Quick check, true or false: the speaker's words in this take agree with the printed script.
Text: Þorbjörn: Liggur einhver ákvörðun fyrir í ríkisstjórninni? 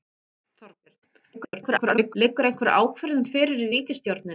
false